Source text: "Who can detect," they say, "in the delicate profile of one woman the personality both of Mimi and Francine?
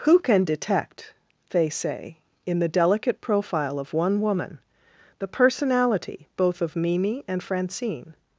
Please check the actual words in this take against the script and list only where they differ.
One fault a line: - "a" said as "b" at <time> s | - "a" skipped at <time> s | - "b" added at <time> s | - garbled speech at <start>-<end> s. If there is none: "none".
none